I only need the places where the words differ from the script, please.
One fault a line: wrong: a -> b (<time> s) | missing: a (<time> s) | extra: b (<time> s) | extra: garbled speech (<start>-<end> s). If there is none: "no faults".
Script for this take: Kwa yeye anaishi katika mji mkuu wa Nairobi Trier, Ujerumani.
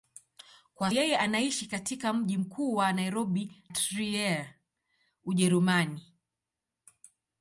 no faults